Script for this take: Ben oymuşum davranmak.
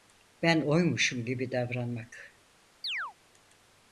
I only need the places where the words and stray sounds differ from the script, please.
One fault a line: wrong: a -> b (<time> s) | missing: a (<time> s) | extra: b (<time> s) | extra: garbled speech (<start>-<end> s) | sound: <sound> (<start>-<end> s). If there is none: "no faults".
extra: gibi (1.3 s)
sound: chirp (2.8-3.1 s)